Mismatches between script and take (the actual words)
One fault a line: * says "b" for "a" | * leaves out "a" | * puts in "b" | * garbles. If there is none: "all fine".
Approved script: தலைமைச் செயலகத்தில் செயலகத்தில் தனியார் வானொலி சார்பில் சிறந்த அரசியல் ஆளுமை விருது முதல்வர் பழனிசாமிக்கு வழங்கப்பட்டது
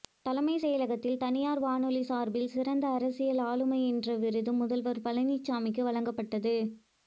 * leaves out "செயலகத்தில்"
* puts in "என்ற"